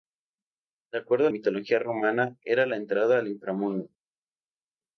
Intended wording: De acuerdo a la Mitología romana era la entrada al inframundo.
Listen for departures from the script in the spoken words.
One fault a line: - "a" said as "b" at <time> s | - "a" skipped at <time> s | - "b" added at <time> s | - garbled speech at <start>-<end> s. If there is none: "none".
- "la" skipped at 1.3 s